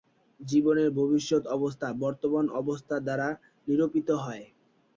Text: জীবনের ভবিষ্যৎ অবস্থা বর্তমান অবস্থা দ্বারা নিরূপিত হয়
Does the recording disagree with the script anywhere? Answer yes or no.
no